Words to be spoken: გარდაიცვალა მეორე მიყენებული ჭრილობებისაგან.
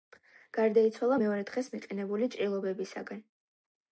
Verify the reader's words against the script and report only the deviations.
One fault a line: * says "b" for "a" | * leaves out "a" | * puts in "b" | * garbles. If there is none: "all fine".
* puts in "დღეს"